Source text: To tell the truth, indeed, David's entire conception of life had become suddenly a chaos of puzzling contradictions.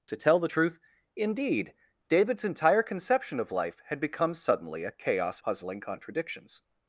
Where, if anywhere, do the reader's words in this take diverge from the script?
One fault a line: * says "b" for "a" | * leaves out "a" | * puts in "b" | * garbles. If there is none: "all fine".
* leaves out "of"